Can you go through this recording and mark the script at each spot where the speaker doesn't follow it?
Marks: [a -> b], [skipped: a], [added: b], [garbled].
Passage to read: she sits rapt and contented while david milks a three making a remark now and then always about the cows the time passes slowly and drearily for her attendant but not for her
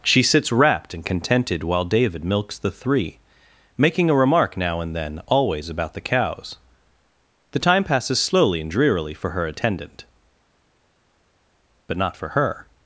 she sits rapt and contented while david milks [a -> the] three making a remark now and then always about the cows the time passes slowly and drearily for her attendant but not for her